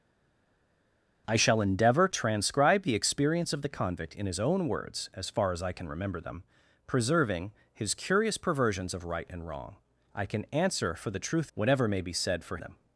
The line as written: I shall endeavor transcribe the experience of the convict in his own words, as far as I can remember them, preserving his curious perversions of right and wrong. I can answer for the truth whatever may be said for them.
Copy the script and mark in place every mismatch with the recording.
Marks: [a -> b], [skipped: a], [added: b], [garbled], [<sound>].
I shall endeavor transcribe the experience of the convict in his own words, as far as I can remember them, preserving his curious perversions of right and wrong. I can answer for the truth whatever may be said for them.